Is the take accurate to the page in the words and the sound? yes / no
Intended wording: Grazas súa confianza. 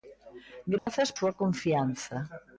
no